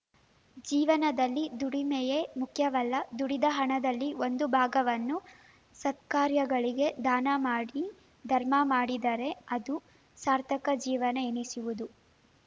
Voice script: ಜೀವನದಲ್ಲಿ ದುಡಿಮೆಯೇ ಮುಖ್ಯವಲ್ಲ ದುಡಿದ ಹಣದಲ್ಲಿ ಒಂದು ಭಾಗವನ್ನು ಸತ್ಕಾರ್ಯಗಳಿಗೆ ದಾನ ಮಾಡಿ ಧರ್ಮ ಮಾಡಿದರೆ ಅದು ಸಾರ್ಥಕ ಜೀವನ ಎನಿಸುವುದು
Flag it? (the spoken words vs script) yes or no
no